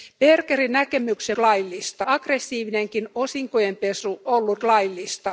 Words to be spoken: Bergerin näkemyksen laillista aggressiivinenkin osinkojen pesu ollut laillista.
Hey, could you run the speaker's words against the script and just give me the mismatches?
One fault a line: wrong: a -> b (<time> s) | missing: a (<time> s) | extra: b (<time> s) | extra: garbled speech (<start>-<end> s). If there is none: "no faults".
no faults